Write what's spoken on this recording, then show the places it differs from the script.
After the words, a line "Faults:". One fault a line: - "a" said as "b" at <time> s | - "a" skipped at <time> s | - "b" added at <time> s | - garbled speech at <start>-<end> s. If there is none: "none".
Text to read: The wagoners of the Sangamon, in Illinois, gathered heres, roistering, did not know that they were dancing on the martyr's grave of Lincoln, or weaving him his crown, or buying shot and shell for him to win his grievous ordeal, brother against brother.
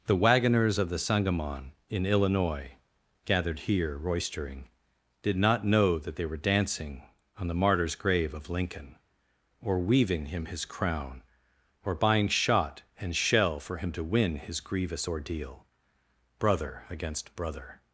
The wagoners of the Sangamon, in Illinois, gathered here, roistering, did not know that they were dancing on the martyr's grave of Lincoln, or weaving him his crown, or buying shot and shell for him to win his grievous ordeal, brother against brother.
Faults:
- "heres" said as "here" at 3.6 s